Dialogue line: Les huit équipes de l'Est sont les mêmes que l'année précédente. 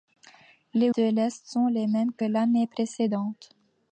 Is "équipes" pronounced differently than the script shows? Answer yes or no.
yes